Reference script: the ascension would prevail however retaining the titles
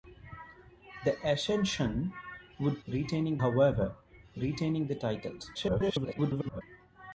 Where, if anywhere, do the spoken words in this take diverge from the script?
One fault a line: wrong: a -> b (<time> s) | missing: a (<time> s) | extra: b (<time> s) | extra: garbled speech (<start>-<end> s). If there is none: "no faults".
wrong: prevail -> retaining (2.9 s)
extra: garbled speech (5.5-6.6 s)